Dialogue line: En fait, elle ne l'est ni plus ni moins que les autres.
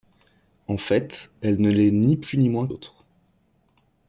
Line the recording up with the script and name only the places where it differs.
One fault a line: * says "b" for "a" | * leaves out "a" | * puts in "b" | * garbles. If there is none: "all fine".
* leaves out "que les"